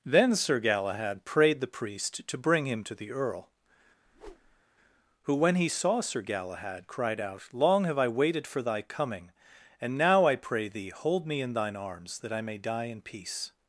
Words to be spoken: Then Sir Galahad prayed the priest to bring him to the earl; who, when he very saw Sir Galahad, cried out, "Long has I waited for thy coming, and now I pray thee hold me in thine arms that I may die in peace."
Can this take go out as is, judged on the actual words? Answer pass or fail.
fail